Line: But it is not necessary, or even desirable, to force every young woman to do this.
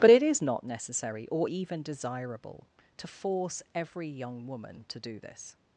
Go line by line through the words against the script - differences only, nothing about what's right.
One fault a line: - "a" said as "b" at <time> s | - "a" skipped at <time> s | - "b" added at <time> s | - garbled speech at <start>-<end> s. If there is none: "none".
none